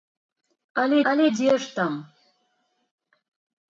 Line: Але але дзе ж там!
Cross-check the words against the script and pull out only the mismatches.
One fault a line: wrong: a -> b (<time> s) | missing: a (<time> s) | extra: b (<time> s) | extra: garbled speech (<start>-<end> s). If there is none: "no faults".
no faults